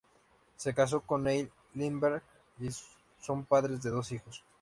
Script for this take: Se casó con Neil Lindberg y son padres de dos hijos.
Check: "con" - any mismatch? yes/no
no